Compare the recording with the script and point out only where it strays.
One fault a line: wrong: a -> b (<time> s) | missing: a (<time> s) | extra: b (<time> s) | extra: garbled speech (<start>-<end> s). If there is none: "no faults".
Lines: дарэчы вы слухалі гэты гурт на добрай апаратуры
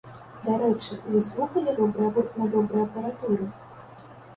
wrong: гэты -> добрай (1.8 s)